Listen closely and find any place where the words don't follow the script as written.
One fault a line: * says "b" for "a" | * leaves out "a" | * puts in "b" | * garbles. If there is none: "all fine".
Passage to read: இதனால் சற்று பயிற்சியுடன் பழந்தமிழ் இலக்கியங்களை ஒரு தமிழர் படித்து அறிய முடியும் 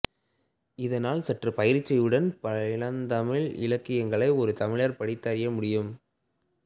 all fine